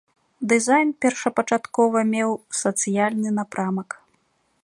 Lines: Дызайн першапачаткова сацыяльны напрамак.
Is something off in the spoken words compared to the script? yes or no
yes